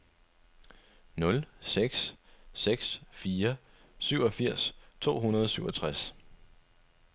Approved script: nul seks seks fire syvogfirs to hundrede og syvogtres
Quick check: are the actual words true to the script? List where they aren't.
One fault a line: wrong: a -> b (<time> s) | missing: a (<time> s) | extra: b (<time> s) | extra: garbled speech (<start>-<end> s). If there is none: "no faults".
no faults